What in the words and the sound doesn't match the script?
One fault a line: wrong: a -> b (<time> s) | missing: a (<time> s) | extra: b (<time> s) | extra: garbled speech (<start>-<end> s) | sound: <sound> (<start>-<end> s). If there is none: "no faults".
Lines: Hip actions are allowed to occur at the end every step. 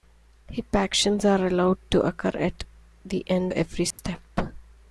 sound: dropout (3.9-4.0 s)